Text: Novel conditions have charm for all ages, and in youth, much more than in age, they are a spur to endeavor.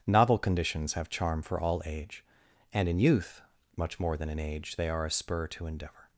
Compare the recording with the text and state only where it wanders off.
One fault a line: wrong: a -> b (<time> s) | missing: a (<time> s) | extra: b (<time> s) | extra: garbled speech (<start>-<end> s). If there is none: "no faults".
wrong: ages -> age (1.9 s)